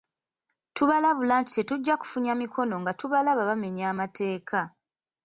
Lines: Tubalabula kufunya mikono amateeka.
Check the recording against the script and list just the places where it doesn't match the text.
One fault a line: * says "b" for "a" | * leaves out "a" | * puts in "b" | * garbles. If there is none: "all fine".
* puts in "nti tetujja"
* puts in "nga tubalaba bamenya"